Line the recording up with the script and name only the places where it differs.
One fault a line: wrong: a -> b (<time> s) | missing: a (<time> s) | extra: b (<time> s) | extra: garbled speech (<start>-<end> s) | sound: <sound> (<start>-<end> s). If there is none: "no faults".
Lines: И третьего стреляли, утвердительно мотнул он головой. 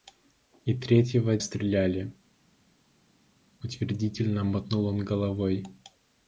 no faults